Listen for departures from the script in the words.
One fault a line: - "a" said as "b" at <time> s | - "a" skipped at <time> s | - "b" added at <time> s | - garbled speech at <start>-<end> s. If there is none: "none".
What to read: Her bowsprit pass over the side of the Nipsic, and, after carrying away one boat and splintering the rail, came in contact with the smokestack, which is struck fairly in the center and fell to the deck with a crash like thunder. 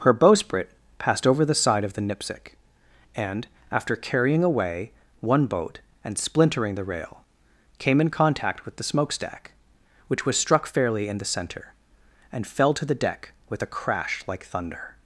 - "pass" said as "passed" at 1.0 s
- "is" said as "was" at 10.2 s